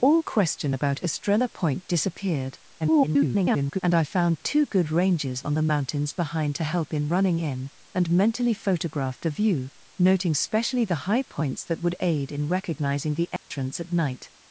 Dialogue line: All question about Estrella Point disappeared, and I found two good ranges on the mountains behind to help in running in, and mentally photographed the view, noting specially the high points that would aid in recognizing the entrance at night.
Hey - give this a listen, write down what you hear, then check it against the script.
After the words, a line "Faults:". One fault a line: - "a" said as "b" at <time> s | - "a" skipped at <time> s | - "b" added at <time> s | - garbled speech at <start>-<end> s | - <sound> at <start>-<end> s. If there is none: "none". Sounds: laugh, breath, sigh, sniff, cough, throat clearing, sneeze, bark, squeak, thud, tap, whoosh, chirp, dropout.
All question about Estrella Point disappeared, [garbled] and I found two good ranges on the mountains behind to help in running in, and mentally photographed the view, noting specially the high points that would aid in recognizing the entrance at night.
Faults:
- garbled speech at 2.8-3.8 s
- dropout at 13.4-13.5 s